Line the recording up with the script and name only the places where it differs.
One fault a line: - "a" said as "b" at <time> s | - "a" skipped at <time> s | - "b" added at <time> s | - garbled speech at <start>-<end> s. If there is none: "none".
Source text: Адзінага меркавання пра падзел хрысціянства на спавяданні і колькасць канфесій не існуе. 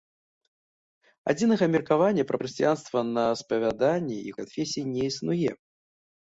- "падзел" skipped at 2.4 s
- "колькасць" skipped at 4.3 s